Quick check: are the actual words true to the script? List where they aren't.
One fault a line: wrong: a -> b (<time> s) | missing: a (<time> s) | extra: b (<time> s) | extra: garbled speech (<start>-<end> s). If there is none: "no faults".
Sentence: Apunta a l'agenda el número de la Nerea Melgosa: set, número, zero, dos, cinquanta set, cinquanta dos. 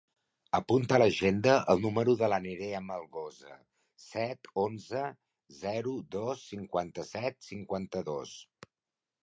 wrong: número -> onze (4.7 s)